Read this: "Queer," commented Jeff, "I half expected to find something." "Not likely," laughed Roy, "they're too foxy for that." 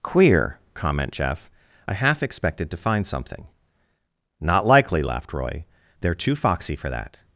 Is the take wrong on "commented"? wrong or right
wrong